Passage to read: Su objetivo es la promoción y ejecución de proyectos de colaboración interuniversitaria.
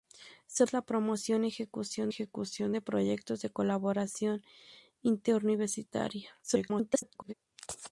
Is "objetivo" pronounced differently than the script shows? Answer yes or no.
yes